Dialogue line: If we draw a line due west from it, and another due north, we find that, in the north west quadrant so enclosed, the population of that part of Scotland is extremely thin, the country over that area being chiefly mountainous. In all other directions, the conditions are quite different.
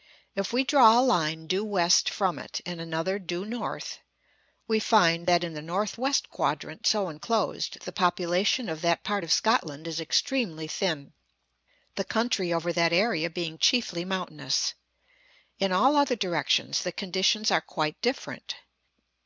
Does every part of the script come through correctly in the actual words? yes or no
yes